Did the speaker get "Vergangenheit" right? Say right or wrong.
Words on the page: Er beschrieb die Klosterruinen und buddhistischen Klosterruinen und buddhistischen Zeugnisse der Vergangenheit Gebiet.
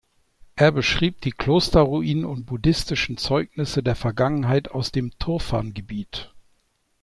wrong